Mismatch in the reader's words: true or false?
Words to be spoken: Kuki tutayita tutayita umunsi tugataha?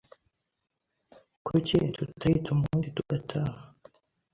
true